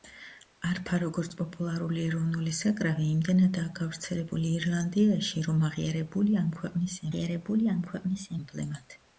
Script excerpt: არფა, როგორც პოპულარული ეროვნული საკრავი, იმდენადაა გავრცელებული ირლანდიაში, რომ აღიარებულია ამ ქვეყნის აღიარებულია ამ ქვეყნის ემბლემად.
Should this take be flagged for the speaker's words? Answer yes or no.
no